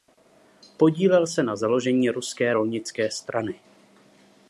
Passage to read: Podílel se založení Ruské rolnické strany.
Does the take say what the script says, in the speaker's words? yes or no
no